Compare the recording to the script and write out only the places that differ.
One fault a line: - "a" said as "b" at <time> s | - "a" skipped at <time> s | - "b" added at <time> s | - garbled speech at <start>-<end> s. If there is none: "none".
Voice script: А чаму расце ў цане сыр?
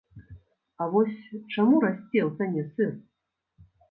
- "вось" added at 0.9 s